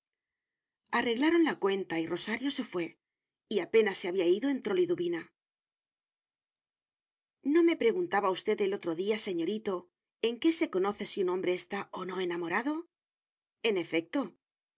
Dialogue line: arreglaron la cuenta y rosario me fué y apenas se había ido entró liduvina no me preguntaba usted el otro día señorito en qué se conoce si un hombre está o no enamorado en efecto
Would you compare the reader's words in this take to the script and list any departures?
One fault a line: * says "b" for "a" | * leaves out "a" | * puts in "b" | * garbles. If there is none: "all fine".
* says "se" for "me"